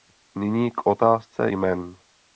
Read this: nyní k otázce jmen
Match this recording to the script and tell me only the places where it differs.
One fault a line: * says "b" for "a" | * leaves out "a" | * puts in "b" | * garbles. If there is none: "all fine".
all fine